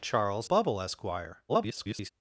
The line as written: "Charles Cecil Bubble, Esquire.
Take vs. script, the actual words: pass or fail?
fail